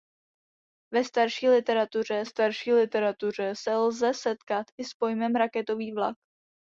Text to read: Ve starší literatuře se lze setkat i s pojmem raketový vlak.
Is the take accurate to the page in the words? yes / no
no